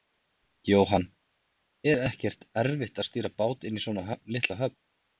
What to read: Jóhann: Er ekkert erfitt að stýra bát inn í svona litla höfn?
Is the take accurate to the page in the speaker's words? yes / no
yes